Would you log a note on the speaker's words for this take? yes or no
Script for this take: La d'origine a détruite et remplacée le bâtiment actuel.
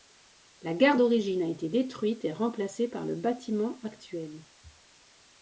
yes